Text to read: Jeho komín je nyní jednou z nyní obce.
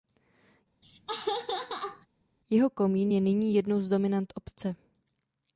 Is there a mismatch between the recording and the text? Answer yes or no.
yes